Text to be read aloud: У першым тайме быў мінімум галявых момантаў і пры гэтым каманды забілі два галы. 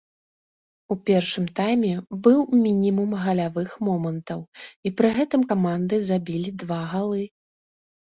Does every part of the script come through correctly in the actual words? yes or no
yes